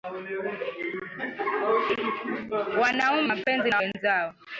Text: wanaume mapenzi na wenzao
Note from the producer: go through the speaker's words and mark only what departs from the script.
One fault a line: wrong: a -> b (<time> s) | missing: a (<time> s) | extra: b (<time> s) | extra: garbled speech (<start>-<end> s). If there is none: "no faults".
no faults